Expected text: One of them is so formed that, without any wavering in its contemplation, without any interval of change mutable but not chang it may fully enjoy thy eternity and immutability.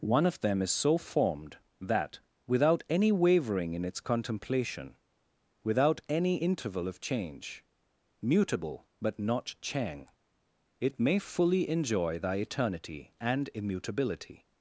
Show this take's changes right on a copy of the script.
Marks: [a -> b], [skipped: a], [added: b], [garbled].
One of them is so formed that, without any wavering in its contemplation, without any interval of change mutable but not chang it may fully enjoy thy eternity and immutability.